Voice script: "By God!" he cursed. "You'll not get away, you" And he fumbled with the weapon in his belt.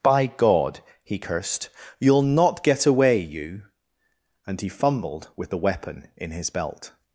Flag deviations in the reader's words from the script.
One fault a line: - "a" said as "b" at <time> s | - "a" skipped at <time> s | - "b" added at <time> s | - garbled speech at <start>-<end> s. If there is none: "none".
none